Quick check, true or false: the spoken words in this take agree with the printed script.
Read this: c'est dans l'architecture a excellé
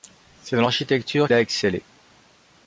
true